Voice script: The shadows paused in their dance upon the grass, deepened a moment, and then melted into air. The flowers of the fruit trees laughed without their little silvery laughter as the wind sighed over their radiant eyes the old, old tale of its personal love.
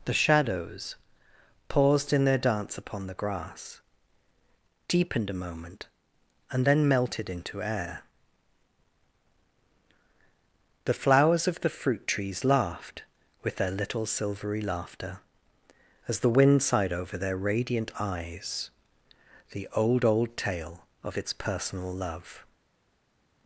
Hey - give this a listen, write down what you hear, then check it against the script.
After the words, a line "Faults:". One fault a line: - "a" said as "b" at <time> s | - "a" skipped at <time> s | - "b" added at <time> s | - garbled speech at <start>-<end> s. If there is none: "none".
The shadows paused in their dance upon the grass, deepened a moment, and then melted into air. The flowers of the fruit trees laughed with their little silvery laughter as the wind sighed over their radiant eyes the old, old tale of its personal love.
Faults:
- "without" said as "with" at 13.4 s